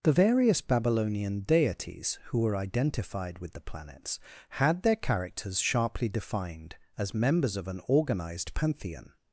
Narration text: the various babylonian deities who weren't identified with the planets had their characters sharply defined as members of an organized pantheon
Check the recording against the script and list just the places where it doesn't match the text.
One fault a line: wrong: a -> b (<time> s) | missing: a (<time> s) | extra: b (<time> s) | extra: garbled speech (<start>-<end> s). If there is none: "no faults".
wrong: weren't -> were (2.4 s)